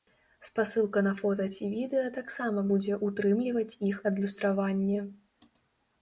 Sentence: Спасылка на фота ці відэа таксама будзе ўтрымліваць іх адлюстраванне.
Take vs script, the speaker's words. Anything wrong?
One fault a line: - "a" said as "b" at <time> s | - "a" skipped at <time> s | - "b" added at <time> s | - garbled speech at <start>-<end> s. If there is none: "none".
none